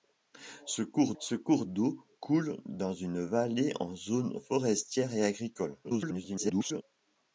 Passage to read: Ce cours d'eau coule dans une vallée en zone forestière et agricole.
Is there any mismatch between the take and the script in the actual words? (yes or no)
yes